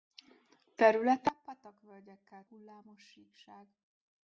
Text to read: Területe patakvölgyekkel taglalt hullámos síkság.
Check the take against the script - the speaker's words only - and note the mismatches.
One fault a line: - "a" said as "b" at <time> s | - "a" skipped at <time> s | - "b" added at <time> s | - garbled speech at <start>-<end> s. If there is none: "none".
- "taglalt" skipped at 2.5 s